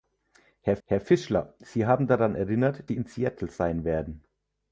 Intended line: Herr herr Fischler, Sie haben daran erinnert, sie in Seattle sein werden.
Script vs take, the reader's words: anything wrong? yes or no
no